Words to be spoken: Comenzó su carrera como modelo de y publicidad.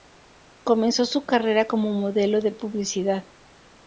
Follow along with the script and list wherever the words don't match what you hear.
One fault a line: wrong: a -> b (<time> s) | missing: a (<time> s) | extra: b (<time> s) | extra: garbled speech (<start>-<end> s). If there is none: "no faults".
no faults